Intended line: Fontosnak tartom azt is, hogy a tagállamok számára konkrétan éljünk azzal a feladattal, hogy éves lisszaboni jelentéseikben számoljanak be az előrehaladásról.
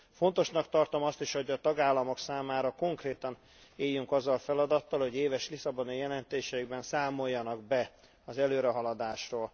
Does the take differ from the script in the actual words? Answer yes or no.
no